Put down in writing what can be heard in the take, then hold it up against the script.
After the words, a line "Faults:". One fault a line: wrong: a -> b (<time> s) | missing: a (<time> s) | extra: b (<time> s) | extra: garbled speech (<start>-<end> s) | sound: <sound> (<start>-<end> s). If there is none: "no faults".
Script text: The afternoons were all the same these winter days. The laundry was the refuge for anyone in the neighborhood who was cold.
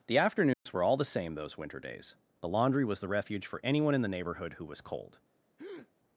The afternoons were all the same those winter days. The laundry was the refuge for anyone in the neighborhood who was cold.
Faults:
sound: dropout (0.5-0.7 s)
wrong: these -> those (1.4 s)
sound: breath (5.6-5.9 s)